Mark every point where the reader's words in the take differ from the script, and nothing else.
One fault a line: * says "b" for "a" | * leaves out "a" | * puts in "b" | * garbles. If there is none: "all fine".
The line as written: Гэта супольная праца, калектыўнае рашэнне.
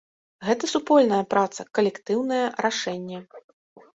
all fine